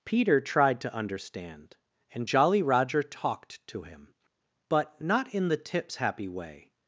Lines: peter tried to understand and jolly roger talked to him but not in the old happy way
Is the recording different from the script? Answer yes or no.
yes